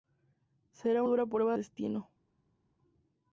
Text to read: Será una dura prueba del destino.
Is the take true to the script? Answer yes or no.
no